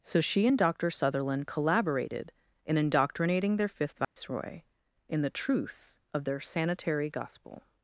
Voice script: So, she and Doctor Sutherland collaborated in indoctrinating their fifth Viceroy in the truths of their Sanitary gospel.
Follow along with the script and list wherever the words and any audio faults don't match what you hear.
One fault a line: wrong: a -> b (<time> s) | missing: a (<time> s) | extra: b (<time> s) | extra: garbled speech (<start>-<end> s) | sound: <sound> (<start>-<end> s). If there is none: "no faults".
sound: dropout (4.0-4.2 s)